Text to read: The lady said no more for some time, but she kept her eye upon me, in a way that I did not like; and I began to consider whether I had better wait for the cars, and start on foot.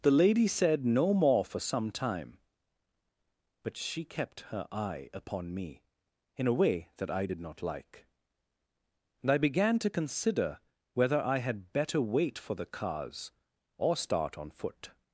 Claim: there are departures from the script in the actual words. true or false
true